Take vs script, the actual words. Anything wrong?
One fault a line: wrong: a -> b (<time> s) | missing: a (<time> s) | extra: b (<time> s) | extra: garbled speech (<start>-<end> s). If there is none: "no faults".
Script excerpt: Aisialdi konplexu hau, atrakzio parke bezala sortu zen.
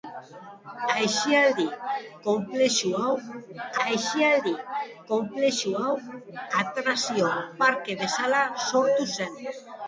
extra: aisialdi konplexu hau (3.8 s)